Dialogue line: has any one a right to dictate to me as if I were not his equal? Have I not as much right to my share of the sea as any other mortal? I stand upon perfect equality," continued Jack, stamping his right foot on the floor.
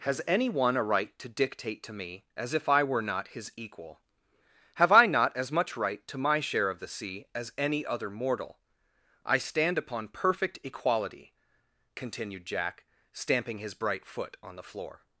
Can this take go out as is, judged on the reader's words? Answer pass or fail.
fail